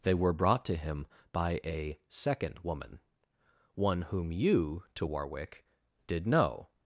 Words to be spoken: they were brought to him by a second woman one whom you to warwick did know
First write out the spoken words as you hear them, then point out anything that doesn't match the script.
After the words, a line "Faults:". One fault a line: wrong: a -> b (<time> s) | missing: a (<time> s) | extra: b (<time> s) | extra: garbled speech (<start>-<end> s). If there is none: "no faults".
they were brought to him by a second woman one whom you to warwick did know
Faults:
no faults